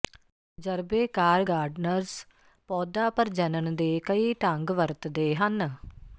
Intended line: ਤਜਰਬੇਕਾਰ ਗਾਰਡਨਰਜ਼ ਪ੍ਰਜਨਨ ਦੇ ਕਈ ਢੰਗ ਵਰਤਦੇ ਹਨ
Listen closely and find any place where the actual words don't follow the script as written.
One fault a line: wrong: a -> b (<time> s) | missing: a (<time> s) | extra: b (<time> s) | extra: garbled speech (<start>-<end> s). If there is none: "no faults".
extra: ਪੌਦਾ (2.7 s)